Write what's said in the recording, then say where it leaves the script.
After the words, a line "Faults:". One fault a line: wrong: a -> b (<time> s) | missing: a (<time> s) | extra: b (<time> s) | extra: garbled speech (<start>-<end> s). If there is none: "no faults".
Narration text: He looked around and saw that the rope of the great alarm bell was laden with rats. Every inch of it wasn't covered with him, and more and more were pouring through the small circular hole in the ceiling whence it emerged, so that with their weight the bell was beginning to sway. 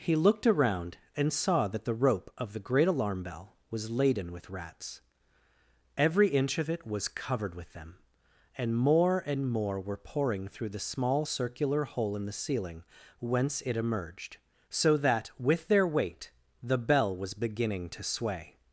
He looked around and saw that the rope of the great alarm bell was laden with rats. Every inch of it was covered with them, and more and more were pouring through the small circular hole in the ceiling whence it emerged, so that with their weight the bell was beginning to sway.
Faults:
wrong: wasn't -> was (6.9 s)
wrong: him -> them (7.7 s)